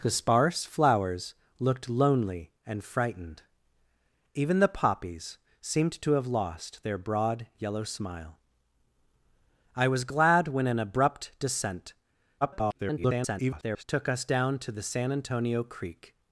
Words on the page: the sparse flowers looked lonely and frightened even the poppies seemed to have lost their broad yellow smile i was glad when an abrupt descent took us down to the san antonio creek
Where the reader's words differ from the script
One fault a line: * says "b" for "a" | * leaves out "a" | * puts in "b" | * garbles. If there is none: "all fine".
* garbles